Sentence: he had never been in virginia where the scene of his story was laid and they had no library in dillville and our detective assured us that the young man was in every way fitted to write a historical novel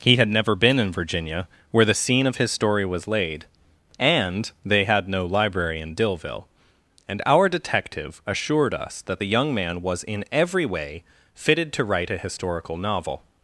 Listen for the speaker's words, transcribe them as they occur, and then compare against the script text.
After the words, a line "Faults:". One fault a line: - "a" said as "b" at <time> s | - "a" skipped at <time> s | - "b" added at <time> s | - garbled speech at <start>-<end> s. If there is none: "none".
he had never been in virginia where the scene of his story was laid and they had no library in dillville and our detective assured us that the young man was in every way fitted to write a historical novel
Faults:
none